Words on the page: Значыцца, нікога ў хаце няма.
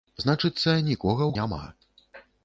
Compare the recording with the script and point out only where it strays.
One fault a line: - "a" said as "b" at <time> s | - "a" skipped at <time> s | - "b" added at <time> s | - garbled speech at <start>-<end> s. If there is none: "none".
- "хаце" skipped at 1.3 s